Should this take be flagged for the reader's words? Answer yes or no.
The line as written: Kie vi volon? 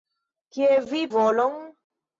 no